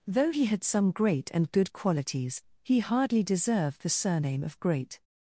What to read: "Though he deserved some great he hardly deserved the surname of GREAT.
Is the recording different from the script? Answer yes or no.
yes